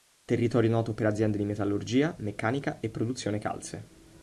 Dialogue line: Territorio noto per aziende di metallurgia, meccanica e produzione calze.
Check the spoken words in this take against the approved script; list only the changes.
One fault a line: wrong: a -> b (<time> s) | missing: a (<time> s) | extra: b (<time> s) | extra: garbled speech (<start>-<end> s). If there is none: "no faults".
no faults